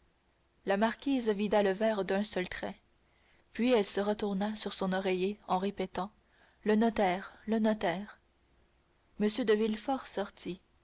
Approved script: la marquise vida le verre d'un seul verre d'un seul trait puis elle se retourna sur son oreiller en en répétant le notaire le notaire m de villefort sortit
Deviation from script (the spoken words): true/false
true